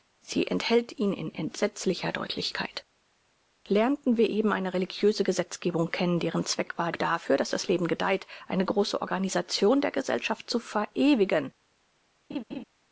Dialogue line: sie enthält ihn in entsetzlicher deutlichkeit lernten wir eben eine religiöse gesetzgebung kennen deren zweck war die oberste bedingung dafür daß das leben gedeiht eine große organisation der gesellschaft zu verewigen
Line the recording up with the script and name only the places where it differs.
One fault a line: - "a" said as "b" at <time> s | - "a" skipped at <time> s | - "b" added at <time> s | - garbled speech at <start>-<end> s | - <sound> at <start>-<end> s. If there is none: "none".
- "die oberste bedingung" skipped at 6.9 s
- laugh at 12.3-12.6 s